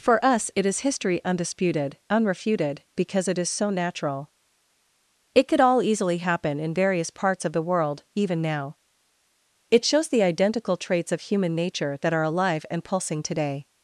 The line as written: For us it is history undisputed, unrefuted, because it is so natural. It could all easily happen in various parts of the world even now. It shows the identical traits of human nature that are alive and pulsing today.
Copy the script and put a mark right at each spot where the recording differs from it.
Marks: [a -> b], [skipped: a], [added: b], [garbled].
For us it is history undisputed, unrefuted, because it is so natural. It could all easily happen in various parts of the world even now. It shows the identical traits of human nature that are alive and pulsing today.